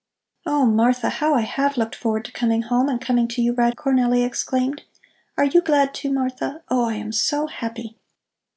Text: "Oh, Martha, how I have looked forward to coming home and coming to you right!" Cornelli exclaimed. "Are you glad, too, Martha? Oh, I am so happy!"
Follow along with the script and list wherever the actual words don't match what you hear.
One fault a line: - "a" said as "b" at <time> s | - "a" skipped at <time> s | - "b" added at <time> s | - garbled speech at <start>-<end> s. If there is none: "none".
none